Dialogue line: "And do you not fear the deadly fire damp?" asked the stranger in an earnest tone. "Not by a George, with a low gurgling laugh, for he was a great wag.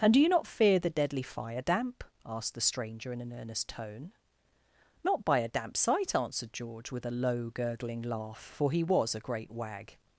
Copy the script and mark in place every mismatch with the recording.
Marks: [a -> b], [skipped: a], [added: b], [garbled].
"And do you not fear the deadly fire damp?" asked the stranger in an earnest tone. "Not by a [added: damp sight answered] George, with a low gurgling laugh, for he was a great wag.